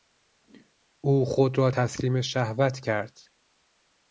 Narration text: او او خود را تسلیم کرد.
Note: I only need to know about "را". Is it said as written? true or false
true